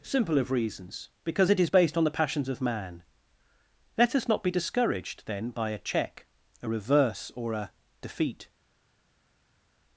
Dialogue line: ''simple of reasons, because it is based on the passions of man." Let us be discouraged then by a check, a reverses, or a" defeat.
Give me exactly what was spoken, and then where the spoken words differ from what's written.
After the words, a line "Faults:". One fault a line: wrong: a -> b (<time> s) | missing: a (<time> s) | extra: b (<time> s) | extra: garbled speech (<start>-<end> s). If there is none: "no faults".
''simple of reasons, because it is based on the passions of man." Let us not be discouraged then by a check, a reverse, or a" defeat.
Faults:
extra: not (4.3 s)
wrong: reverses -> reverse (6.7 s)